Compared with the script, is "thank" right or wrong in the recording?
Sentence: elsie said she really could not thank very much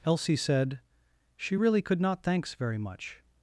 wrong